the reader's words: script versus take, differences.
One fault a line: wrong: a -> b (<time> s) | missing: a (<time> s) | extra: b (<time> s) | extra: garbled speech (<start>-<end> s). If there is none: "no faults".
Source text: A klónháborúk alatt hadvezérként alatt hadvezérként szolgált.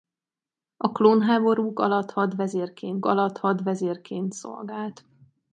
no faults